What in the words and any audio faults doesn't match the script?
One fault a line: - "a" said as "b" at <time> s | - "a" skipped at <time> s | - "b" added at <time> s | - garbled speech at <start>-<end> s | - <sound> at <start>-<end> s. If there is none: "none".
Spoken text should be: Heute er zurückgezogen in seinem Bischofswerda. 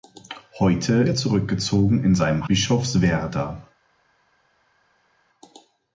none